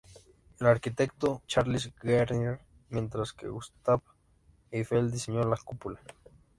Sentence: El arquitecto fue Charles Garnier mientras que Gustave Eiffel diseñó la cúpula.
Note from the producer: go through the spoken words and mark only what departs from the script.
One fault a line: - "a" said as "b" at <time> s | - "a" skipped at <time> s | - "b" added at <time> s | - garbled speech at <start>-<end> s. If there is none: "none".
- "fue" skipped at 1.4 s